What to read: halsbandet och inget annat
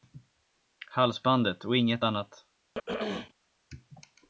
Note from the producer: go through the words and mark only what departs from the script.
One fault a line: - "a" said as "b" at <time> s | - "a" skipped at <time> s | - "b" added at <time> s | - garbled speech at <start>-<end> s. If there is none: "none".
none